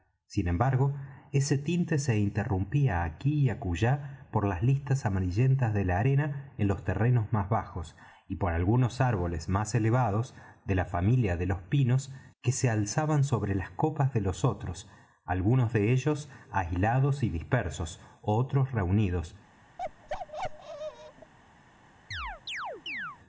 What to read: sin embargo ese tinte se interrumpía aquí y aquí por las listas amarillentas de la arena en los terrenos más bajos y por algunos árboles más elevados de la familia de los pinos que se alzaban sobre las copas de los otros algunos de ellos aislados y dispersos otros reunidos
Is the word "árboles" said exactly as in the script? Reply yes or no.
yes